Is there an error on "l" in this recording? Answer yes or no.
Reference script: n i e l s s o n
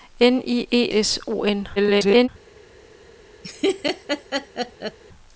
yes